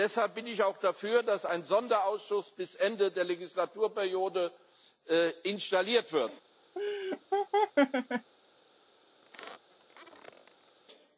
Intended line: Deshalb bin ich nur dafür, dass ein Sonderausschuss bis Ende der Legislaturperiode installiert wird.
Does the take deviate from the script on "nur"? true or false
true